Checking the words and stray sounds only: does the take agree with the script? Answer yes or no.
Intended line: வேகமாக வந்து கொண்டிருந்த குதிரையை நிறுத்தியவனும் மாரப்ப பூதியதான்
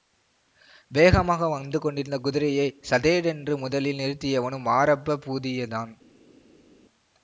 no